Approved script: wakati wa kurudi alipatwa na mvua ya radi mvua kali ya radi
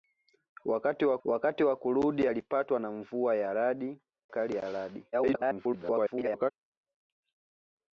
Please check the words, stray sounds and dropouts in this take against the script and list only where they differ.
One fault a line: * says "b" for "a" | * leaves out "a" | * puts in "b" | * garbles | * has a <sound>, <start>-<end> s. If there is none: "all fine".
* puts in "wakati wa"
* leaves out "mvua"
* garbles